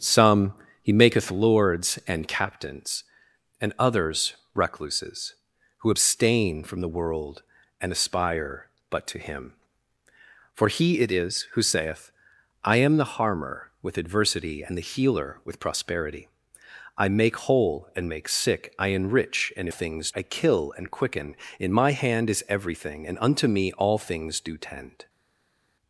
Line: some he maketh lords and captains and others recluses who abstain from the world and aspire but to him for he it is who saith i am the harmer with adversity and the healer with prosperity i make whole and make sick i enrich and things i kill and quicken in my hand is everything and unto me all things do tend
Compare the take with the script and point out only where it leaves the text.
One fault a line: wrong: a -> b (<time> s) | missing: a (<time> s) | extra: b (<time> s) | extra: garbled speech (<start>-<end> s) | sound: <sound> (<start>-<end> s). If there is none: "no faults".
no faults